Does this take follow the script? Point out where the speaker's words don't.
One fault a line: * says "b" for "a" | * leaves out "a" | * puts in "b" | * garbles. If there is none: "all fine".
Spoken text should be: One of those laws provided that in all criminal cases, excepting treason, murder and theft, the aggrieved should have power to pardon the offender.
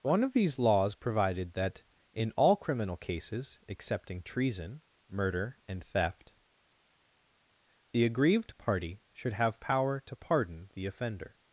* says "these" for "those"
* puts in "party"